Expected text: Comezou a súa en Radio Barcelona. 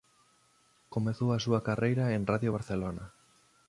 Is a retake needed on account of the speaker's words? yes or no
yes